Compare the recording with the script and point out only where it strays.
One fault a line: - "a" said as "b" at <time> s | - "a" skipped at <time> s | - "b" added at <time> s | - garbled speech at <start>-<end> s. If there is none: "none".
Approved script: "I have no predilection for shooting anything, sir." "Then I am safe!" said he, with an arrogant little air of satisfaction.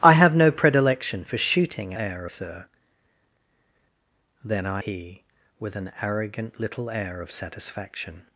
- "anything" said as "air" at 1.9 s
- "am safe said" skipped at 4.8 s